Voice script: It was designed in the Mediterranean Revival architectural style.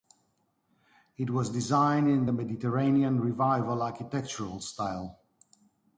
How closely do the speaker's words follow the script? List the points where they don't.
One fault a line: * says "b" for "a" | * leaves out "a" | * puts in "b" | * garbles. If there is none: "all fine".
all fine